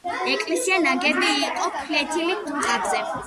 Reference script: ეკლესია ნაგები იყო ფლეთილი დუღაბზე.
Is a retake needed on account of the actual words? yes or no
no